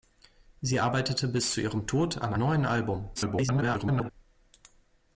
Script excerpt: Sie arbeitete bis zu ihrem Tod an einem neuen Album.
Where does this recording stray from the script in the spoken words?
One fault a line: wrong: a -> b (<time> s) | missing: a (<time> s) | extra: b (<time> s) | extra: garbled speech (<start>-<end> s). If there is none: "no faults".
missing: einem (2.3 s)
extra: garbled speech (3.2-4.1 s)